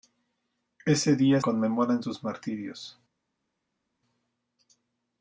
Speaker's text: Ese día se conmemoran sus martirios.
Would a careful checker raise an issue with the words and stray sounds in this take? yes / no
yes